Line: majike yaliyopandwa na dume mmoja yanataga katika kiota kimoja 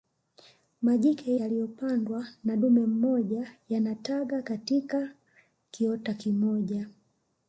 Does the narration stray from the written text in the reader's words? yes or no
no